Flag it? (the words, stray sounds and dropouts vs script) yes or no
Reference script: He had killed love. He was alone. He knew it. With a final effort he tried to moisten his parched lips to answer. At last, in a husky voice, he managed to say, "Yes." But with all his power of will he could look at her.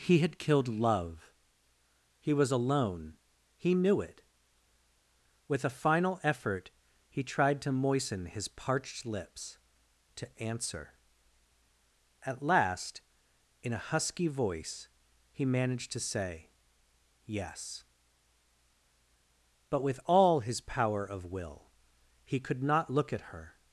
yes